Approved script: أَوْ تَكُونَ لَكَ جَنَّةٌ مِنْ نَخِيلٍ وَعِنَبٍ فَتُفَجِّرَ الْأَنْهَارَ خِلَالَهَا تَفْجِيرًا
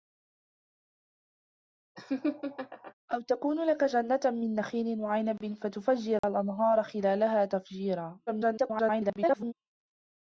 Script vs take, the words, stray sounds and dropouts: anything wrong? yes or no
yes